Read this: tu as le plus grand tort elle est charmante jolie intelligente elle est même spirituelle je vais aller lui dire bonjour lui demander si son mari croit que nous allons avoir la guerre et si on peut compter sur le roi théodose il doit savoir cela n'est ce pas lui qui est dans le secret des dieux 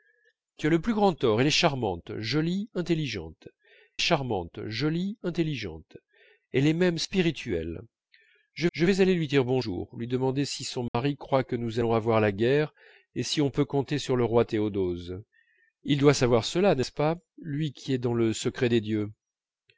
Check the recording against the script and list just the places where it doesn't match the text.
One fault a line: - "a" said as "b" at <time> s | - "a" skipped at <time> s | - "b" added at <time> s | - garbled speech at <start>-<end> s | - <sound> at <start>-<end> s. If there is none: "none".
- "charmante jolie intelligente" added at 4.0 s
- "je" added at 8.7 s
- dropout at 10.9-10.9 s